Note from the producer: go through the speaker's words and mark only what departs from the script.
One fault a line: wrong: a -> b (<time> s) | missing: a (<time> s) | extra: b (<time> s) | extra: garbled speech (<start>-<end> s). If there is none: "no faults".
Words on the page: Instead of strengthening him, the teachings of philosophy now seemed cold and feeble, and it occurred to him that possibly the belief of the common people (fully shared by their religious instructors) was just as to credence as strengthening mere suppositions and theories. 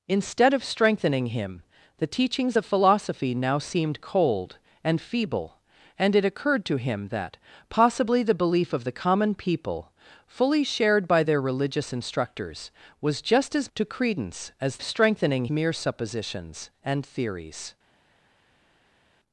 no faults